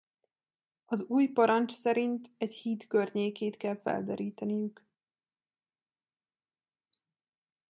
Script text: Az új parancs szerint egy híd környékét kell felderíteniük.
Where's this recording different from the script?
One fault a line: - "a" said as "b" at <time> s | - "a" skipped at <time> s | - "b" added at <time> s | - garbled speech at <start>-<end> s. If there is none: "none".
none